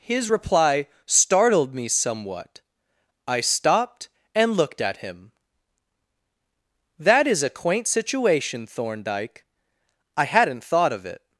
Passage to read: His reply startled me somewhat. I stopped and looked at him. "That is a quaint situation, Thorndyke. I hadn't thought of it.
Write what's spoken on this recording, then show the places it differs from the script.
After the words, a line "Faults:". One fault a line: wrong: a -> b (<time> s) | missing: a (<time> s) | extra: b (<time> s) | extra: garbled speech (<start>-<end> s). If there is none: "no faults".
His reply startled me somewhat. I stopped and looked at him. "That is a quaint situation, Thorndyke. I hadn't thought of it.
Faults:
no faults